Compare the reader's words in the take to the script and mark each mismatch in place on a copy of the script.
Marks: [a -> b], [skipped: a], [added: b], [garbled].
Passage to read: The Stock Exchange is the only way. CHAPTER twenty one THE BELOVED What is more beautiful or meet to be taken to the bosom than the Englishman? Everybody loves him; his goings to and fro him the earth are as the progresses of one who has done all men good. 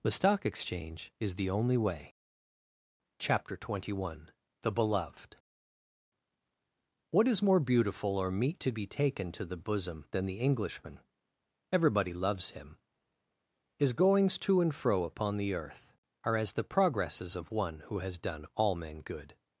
The Stock Exchange is the only way. CHAPTER twenty one THE BELOVED What is more beautiful or meet to be taken to the bosom than the Englishman? Everybody loves him; his goings to and fro [him -> upon] the earth are as the progresses of one who has done all men good.